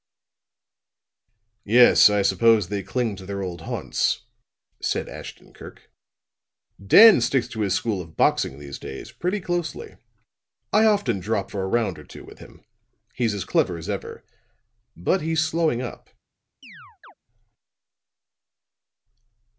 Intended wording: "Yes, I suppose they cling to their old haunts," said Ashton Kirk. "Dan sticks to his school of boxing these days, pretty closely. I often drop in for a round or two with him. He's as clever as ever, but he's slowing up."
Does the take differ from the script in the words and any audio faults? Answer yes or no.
yes